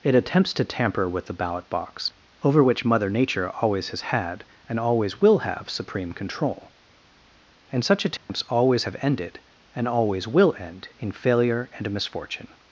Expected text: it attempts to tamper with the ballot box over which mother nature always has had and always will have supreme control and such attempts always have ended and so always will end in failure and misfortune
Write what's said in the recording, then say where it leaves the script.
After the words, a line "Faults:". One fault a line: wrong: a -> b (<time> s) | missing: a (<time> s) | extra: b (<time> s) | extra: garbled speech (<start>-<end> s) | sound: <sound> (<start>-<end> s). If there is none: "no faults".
it attempts to tamper with the ballot box over which mother nature always has had and always will have supreme control and such attempts always have ended and always will end in failure and misfortune
Faults:
sound: dropout (8.2-8.3 s)
missing: so (9.9 s)